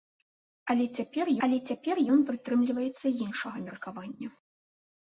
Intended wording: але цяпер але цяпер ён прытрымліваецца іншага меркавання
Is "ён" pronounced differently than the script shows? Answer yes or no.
no